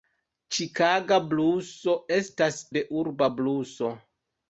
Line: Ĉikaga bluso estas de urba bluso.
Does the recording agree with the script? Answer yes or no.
yes